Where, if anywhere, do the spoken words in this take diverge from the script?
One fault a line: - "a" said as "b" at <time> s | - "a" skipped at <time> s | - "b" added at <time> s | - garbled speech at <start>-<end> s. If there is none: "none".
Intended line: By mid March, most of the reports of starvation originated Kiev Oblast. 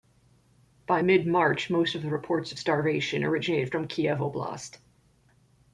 - "from" added at 3.7 s